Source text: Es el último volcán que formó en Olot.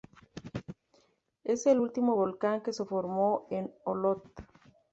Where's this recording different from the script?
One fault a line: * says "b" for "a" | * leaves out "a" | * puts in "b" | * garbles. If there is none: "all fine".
* puts in "se"